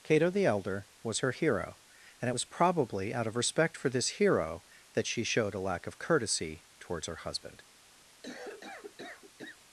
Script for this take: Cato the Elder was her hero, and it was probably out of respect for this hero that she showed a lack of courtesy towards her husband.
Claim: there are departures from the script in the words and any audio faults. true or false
true